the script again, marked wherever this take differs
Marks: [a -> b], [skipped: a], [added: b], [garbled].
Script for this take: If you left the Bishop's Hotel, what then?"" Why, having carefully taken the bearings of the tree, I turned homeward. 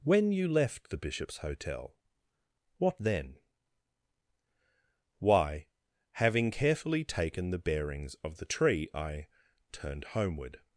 [If -> When] you left the Bishop's Hotel, what then?"" Why, having carefully taken the bearings of the tree, I turned homeward.